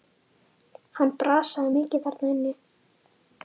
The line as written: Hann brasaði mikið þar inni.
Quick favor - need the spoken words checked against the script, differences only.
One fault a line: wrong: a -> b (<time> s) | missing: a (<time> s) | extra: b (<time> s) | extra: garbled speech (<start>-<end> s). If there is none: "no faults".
no faults